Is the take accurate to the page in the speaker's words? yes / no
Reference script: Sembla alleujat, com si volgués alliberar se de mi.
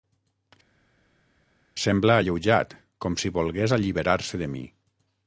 yes